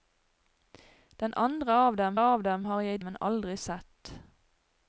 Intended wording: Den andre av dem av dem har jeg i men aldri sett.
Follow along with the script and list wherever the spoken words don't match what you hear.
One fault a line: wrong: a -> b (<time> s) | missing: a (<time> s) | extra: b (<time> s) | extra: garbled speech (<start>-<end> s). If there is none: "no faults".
no faults